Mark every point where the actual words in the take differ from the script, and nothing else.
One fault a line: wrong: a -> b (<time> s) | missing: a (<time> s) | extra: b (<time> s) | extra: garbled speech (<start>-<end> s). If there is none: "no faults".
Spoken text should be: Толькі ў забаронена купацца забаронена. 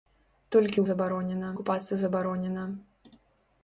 no faults